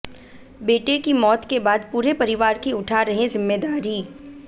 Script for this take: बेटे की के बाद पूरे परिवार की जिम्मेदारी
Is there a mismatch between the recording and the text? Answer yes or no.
yes